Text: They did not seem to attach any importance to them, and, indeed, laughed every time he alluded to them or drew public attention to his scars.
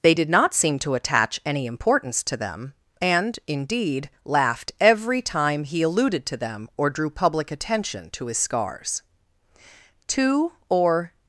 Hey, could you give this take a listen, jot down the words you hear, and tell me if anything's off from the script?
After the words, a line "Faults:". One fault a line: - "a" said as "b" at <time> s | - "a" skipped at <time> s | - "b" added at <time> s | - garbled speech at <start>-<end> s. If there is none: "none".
They did not seem to attach any importance to them, and, indeed, laughed every time he alluded to them or drew public attention to his scars. Two or
Faults:
- "Two or" added at 10.1 s